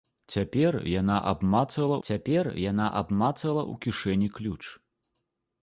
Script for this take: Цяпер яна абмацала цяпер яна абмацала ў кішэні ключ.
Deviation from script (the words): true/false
false